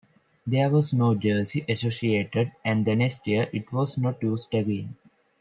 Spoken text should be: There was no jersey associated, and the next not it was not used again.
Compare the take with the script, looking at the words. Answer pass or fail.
fail